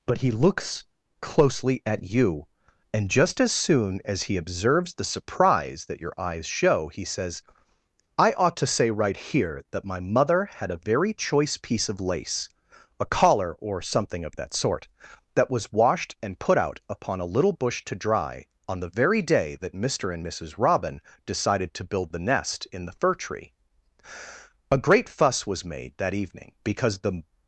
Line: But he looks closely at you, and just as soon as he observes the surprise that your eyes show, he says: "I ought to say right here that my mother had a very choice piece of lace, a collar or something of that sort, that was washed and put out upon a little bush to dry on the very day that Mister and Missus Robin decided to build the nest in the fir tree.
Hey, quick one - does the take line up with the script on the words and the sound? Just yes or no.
no